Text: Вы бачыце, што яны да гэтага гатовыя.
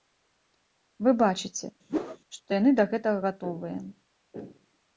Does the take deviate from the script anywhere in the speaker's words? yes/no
no